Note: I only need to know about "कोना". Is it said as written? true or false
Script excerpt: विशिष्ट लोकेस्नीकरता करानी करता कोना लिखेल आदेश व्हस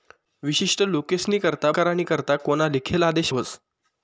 true